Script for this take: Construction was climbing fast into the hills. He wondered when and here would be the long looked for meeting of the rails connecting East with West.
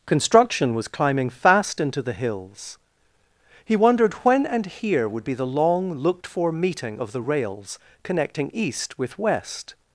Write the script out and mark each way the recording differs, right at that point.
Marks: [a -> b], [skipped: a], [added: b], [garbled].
Construction was climbing fast into the hills. He wondered when and here would be the long looked for meeting of the rails connecting East with West.